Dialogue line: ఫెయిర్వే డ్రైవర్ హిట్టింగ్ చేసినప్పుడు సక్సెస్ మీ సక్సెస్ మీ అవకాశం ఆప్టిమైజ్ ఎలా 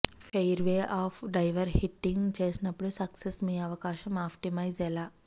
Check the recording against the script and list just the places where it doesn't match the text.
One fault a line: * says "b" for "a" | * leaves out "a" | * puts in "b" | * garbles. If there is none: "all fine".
* puts in "ఆఫ్"
* leaves out "సక్సెస్ మీ"